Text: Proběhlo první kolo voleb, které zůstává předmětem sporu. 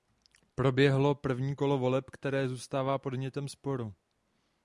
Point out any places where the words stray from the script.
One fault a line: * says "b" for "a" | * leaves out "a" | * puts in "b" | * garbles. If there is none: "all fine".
all fine